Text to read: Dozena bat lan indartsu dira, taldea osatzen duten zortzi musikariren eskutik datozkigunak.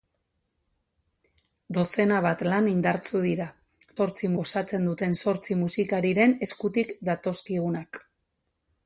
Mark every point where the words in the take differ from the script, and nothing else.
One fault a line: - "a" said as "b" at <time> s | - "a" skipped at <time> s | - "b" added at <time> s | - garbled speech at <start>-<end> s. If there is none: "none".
- "taldea" said as "zortzi" at 4.0 s